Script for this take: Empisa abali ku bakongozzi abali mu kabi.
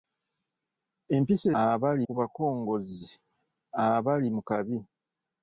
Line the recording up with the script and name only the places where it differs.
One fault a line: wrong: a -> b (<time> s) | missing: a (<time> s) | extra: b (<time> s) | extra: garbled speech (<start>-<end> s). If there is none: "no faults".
no faults